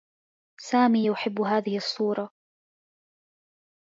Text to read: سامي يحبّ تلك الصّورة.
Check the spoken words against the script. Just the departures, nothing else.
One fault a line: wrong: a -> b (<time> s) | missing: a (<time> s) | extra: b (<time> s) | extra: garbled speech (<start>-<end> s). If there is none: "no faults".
wrong: تلك -> هذه (1.4 s)